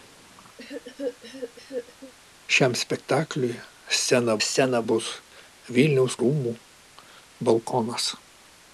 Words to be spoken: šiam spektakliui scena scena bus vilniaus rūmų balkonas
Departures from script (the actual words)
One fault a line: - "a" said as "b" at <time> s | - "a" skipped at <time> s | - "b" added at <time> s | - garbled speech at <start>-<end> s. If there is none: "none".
none